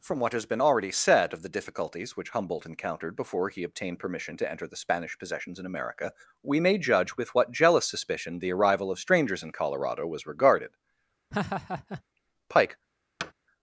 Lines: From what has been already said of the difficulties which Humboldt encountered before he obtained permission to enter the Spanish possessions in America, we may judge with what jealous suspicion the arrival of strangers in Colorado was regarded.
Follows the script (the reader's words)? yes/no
no